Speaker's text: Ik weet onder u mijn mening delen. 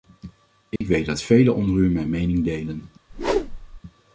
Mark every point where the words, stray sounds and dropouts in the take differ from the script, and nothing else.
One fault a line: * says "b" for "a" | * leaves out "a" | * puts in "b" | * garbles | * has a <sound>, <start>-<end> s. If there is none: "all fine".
* has a dropout, 0.8-0.8 s
* puts in "dat velen"
* has a whoosh, 3.1-3.8 s